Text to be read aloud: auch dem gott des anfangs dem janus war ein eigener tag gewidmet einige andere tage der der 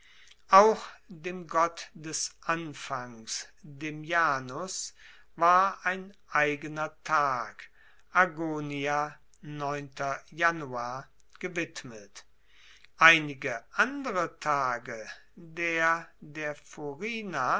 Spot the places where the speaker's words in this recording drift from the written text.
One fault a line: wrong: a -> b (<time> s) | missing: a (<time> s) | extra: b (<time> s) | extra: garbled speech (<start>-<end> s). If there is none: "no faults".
no faults